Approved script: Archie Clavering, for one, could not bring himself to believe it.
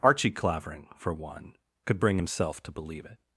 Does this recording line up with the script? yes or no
no